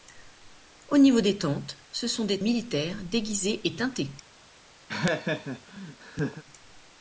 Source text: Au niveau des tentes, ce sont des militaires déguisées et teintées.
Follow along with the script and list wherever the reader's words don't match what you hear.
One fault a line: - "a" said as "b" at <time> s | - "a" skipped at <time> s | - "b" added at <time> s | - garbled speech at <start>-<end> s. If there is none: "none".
none